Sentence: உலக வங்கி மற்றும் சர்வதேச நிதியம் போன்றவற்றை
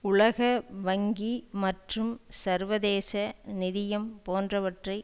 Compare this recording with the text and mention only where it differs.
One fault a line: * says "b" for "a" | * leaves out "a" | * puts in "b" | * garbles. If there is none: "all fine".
all fine